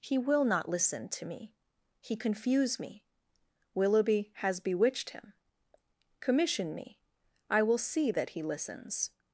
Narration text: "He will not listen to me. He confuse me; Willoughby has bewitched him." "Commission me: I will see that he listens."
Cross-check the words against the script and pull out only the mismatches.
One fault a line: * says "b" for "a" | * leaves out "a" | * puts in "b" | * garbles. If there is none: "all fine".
all fine